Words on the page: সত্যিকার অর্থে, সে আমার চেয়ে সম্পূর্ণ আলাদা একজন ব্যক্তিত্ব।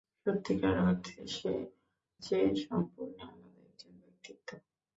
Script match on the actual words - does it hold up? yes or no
no